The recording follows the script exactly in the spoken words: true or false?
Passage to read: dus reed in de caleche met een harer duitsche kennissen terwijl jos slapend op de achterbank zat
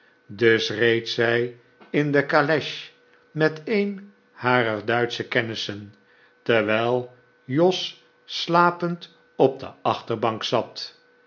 false